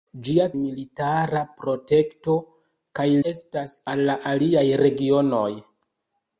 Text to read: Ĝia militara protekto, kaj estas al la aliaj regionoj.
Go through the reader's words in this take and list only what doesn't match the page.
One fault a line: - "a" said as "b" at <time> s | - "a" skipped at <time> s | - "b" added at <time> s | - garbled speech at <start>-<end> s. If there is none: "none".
none